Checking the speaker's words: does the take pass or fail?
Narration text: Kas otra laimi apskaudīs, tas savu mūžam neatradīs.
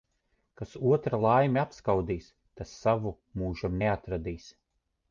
pass